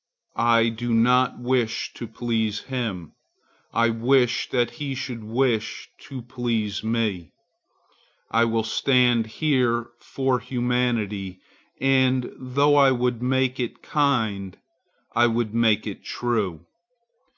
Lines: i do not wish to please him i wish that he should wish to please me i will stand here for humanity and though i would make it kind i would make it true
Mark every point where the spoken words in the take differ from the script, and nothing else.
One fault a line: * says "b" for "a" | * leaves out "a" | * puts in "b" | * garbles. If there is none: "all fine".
all fine